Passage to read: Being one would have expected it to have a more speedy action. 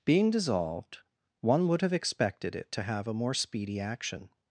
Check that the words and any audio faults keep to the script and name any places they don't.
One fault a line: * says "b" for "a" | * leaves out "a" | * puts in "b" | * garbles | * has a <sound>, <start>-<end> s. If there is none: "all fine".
* puts in "dissolved"